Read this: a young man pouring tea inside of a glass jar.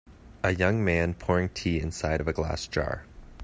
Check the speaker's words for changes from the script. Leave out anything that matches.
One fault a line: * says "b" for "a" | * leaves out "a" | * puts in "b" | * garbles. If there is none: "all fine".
all fine